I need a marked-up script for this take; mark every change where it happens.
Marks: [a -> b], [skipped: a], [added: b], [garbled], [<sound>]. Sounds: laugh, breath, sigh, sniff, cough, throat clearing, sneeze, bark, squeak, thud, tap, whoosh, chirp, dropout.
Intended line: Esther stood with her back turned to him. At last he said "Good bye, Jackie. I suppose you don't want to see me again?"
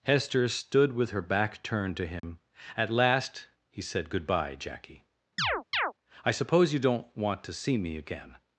[Esther -> Hester] stood with her back turned to him. [dropout] At last he said "Good bye, Jackie. [chirp] I suppose you don't want to see me again?"